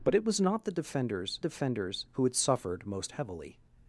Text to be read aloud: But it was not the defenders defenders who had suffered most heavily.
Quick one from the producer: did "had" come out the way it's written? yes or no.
yes